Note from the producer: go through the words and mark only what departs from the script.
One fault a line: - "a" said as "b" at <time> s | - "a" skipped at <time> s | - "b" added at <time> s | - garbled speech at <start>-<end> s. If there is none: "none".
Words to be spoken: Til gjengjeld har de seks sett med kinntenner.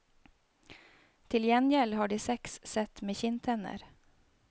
none